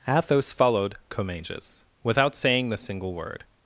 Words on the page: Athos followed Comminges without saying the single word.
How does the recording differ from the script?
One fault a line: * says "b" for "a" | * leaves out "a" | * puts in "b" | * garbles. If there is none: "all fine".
all fine